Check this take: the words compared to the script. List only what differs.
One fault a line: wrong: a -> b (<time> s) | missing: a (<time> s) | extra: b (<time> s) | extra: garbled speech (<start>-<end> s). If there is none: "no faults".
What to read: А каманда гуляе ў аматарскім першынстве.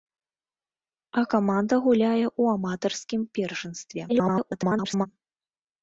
extra: garbled speech (4.1-5.1 s)